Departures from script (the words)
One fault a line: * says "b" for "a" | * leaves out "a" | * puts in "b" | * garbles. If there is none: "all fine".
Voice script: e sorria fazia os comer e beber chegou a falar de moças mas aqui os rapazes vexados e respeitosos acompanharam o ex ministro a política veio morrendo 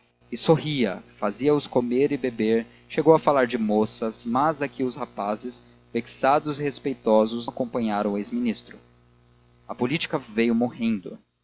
all fine